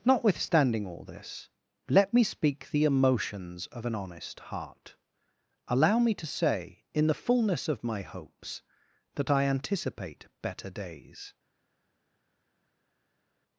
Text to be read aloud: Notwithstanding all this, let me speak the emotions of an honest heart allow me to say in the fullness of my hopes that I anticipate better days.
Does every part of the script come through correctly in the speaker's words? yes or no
yes